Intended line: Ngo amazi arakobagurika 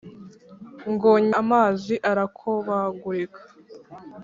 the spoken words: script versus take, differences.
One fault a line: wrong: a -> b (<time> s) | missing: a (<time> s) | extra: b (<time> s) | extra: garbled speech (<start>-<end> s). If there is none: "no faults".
no faults